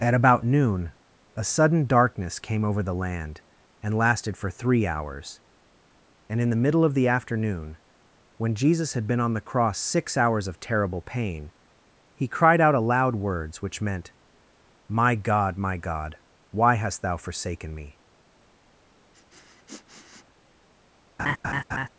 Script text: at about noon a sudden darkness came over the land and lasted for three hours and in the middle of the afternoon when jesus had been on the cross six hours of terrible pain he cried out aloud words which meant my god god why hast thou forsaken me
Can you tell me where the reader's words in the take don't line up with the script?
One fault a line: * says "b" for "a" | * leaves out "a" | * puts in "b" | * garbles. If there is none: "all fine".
* puts in "my"